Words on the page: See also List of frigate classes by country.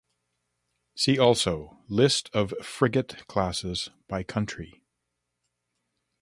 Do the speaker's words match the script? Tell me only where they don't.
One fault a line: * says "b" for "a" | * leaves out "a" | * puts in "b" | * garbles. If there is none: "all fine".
all fine